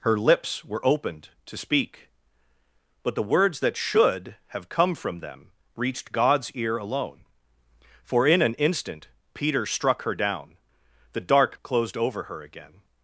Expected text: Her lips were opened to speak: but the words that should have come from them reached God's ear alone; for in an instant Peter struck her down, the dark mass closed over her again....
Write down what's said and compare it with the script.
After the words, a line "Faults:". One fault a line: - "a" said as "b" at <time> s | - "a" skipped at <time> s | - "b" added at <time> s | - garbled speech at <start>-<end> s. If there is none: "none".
Her lips were opened to speak: but the words that should have come from them reached God's ear alone; for in an instant Peter struck her down, the dark closed over her again....
Faults:
- "mass" skipped at 11.6 s